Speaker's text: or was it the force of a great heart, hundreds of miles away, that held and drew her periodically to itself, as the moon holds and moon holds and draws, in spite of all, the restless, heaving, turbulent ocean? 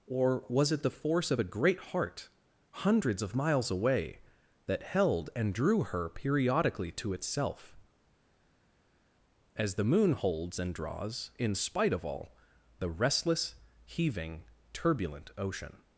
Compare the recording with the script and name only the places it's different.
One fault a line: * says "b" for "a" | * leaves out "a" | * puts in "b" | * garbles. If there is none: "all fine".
* leaves out "moon holds and"